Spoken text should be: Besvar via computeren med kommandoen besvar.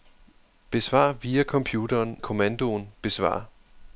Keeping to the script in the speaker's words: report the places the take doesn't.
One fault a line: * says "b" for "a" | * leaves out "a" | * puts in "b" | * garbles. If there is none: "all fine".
* leaves out "med"